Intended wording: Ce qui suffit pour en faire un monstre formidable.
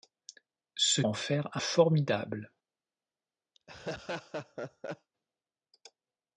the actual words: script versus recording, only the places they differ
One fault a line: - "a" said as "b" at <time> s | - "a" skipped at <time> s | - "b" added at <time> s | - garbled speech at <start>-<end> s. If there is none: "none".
- "qui suffit pour" skipped at 1.0 s
- "monstre" skipped at 1.6 s